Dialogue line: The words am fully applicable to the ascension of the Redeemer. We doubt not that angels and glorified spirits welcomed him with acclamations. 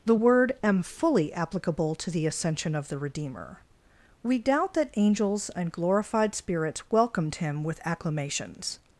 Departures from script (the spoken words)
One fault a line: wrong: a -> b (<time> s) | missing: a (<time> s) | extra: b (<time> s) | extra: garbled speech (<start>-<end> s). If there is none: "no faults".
wrong: words -> word (0.1 s)
missing: not (4.7 s)